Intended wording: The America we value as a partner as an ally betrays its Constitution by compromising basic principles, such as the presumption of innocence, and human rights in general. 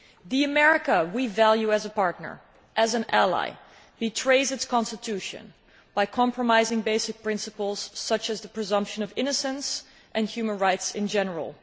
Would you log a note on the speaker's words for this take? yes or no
no